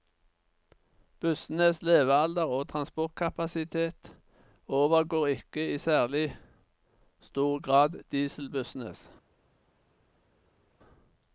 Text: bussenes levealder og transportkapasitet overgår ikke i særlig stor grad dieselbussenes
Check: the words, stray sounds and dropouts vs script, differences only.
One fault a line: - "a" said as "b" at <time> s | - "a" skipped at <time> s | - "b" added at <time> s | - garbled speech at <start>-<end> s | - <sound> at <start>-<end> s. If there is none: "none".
none